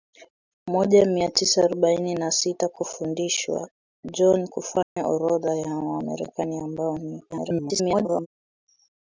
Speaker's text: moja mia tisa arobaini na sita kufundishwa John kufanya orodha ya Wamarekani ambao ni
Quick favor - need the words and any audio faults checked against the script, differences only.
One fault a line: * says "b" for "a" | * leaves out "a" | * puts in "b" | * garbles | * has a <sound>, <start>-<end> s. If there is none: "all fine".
* has a dropout, 4.8-5.0 s
* garbles